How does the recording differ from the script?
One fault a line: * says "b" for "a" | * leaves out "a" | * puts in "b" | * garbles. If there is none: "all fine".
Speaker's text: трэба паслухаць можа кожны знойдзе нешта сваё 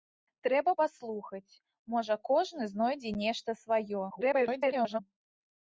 * garbles